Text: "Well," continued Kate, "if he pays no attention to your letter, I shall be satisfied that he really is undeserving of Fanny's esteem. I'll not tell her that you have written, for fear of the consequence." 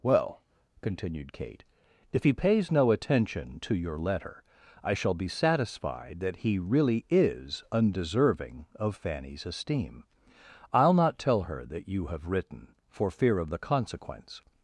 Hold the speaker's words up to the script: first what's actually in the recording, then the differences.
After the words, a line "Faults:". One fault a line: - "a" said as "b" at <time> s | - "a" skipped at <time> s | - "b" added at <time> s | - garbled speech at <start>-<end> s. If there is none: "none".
"Well," continued Kate, "if he pays no attention to your letter, I shall be satisfied that he really is undeserving of Fanny's esteem. I'll not tell her that you have written, for fear of the consequence."
Faults:
none